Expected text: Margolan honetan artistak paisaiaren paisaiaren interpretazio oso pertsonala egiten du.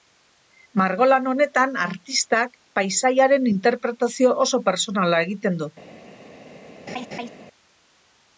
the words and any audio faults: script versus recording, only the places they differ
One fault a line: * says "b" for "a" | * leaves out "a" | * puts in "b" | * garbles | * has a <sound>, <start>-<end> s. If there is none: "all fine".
* leaves out "paisaiaren"
* has a laugh, 6.9-7.3 s